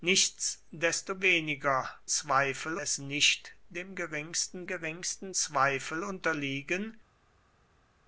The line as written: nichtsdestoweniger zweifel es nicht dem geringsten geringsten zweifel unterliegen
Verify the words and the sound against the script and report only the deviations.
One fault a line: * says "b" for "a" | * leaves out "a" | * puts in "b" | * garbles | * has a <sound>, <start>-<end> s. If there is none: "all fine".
all fine